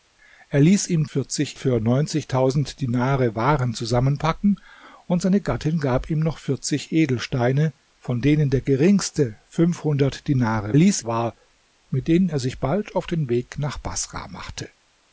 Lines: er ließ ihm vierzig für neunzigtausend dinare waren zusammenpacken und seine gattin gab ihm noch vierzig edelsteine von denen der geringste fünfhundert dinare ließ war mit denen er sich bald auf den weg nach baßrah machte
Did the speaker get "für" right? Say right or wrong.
right